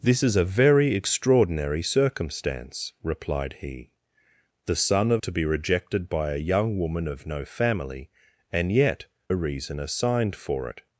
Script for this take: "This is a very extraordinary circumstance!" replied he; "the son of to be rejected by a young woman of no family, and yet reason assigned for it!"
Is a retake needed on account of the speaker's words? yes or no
no